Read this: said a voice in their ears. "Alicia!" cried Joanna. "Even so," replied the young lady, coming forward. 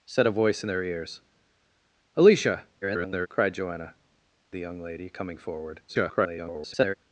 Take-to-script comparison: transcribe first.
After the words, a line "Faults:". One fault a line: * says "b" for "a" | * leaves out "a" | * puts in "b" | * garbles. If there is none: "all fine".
said a voice in their ears. "Alicia!" [garbled] cried Joanna. "The young lady, coming forward. [garbled]
Faults:
* garbles
* leaves out "Even so replied"
* garbles